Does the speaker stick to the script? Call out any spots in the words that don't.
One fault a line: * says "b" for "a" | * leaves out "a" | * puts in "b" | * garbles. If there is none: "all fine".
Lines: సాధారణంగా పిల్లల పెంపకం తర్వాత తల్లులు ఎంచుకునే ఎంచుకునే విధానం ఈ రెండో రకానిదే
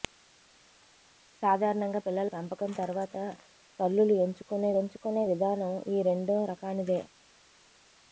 all fine